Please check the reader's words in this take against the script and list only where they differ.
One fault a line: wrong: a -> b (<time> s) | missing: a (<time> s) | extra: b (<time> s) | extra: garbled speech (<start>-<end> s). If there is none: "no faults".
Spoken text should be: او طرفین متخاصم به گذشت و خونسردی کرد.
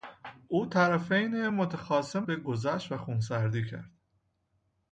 no faults